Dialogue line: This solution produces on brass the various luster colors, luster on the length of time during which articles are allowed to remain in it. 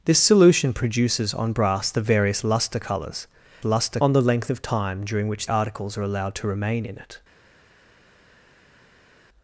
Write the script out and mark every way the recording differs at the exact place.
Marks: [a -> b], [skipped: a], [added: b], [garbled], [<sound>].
This solution produces on brass the various luster colors, luster on the length of time during which articles are allowed to remain in it.